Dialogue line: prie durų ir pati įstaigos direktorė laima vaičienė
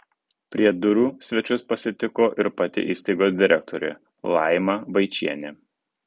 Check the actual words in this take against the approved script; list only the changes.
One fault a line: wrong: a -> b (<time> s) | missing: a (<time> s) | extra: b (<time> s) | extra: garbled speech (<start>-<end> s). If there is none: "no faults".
extra: svečius pasitiko (1.2 s)